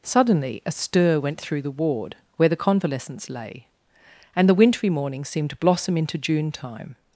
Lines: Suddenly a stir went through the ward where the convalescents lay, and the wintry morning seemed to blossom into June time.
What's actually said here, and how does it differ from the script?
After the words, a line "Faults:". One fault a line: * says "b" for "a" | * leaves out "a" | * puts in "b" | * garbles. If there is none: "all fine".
Suddenly a stir went through the ward where the convalescents lay, and the wintry morning seemed to blossom into June time.
Faults:
all fine